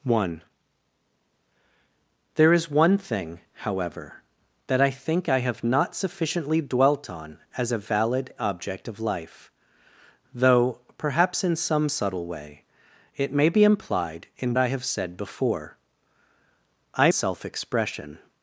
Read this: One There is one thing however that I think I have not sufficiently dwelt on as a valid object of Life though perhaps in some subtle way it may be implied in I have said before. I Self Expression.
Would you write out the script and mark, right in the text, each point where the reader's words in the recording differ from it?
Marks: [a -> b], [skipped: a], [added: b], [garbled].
One There is one thing however that I think I have not sufficiently dwelt on as a valid object of Life though perhaps in some subtle way it may be implied in I have said before. I Self Expression.